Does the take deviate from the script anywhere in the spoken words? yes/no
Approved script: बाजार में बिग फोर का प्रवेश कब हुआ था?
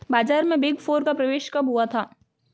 no